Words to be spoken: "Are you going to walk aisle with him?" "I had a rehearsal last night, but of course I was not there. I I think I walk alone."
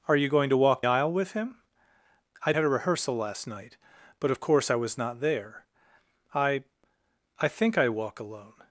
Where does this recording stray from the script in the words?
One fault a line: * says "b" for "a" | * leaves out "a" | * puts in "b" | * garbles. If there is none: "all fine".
all fine